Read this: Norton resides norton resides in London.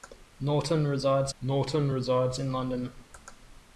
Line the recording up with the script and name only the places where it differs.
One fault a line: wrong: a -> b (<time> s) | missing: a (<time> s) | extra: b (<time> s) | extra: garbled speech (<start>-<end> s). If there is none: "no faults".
no faults